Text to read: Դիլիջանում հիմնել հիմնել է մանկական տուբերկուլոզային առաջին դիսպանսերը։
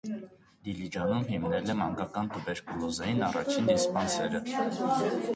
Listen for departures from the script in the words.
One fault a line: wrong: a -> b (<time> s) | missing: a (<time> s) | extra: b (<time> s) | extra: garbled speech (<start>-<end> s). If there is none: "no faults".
missing: հիմնել (1.7 s)